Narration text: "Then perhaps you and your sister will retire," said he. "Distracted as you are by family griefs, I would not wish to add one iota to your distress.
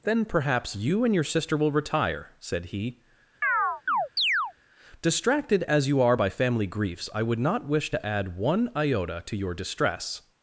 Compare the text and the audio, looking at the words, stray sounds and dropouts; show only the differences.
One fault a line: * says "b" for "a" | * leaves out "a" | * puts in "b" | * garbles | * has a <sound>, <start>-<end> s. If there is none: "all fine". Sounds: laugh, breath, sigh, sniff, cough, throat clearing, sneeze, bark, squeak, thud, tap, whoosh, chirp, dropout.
* has a chirp, 3.4-4.5 s